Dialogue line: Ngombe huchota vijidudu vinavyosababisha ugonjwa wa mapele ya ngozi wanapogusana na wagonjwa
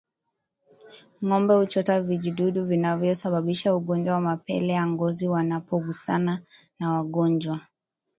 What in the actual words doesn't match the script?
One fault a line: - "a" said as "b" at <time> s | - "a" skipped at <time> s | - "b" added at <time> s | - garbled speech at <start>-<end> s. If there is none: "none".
none